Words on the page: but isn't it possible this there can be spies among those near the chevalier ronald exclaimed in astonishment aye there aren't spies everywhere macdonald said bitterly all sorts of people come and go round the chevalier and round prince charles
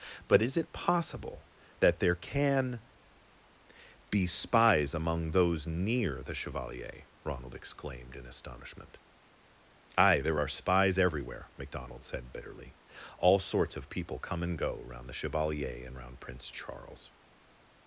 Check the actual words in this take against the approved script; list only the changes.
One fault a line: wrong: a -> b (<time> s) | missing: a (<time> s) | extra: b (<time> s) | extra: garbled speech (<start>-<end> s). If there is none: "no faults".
wrong: isn't -> is (0.4 s)
wrong: this -> that (1.8 s)
wrong: aren't -> are (10.4 s)